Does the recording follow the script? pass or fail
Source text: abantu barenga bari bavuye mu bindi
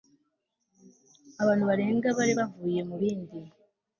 pass